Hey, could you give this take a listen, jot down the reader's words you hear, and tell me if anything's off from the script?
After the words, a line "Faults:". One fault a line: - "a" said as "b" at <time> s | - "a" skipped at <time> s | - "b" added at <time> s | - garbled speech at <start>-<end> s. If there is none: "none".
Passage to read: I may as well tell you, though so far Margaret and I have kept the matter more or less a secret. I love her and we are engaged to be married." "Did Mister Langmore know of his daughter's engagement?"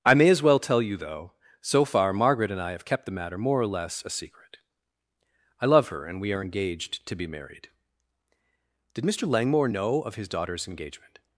I may as well tell you, though so far Margaret and I have kept the matter more or less a secret. I love her and we are engaged to be married." "Did Mister Langmore know of his daughter's engagement?"
Faults:
none